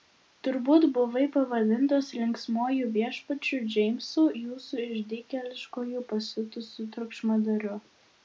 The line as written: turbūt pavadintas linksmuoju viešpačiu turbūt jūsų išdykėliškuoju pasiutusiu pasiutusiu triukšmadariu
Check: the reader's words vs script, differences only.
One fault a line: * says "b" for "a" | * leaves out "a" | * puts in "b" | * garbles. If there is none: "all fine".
* puts in "buvai"
* says "džeimsu" for "turbūt"
* leaves out "pasiutusiu"